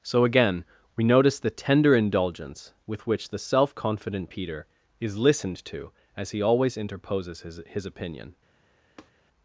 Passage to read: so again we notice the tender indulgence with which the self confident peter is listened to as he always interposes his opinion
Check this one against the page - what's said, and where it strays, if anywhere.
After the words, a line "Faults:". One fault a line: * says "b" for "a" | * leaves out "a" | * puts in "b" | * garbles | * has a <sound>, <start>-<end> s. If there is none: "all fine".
so again we notice the tender indulgence with which the self confident peter is listened to as he always interposes his his opinion
Faults:
* puts in "his"
* has a tap, 9.0-9.1 s